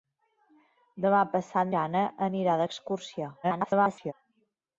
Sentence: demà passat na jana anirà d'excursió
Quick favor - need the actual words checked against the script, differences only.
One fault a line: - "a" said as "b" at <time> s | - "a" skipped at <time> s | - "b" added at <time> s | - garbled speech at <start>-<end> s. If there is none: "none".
- "na" skipped at 1.8 s
- garbled speech at 3.4-4.1 s